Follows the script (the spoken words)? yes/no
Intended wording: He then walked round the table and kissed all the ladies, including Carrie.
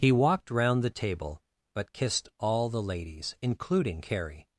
no